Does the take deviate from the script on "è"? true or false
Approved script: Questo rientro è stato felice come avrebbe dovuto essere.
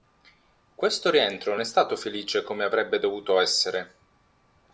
false